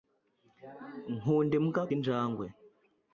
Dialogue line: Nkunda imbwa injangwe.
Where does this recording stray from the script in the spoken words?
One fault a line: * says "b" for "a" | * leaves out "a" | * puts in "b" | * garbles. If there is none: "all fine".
all fine